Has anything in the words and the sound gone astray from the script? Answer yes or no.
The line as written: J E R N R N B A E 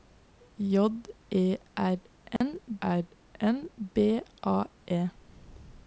yes